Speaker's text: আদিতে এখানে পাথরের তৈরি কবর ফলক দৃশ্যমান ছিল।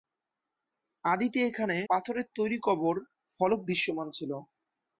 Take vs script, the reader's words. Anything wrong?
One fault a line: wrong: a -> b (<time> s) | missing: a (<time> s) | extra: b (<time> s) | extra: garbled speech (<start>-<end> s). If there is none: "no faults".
no faults